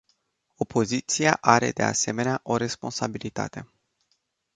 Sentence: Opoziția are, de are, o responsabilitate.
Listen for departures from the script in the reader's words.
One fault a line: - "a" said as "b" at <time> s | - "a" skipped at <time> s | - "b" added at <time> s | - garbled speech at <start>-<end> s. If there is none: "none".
- "are" said as "asemenea" at 1.8 s